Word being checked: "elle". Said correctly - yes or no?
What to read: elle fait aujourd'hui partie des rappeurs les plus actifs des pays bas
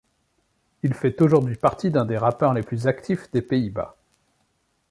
no